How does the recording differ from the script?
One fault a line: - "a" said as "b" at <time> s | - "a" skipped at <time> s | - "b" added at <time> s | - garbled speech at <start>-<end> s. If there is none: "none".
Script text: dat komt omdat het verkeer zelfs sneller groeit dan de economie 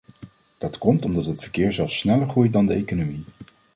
none